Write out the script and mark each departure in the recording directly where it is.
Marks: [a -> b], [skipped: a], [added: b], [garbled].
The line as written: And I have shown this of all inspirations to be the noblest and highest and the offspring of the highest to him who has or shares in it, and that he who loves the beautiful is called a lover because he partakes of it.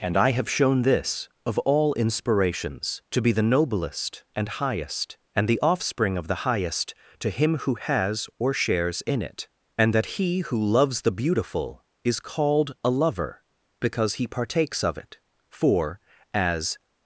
And I have shown this of all inspirations to be the noblest and highest and the offspring of the highest to him who has or shares in it, and that he who loves the beautiful is called a lover because he partakes of it. [added: For as]